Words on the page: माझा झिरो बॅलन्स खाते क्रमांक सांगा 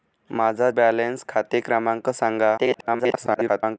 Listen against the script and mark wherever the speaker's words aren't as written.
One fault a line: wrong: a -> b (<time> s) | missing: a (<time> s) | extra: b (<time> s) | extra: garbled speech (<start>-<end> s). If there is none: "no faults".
missing: झिरो (0.7 s)
extra: garbled speech (2.6-3.8 s)